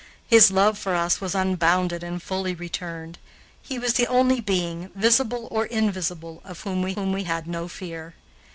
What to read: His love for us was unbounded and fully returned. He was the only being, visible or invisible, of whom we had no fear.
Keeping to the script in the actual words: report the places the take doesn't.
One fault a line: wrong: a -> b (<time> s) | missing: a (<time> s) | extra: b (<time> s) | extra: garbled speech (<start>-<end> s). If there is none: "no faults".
extra: whom we (6.9 s)